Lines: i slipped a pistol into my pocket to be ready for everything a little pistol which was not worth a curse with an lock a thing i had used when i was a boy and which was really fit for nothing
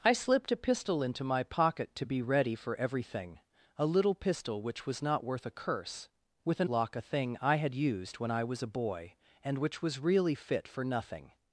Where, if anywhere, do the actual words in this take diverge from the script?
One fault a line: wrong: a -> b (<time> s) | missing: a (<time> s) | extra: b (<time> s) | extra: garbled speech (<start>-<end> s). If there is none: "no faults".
no faults